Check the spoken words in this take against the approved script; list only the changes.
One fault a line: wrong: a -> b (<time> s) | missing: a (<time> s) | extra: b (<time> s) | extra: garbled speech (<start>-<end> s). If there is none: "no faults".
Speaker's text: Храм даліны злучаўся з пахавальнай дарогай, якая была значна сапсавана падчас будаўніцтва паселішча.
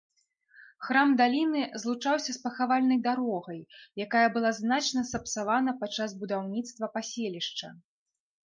no faults